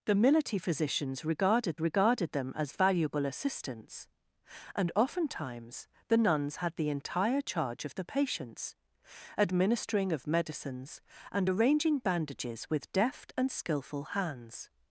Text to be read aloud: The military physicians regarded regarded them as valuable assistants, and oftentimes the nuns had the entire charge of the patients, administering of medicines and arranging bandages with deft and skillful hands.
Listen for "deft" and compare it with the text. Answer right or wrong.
right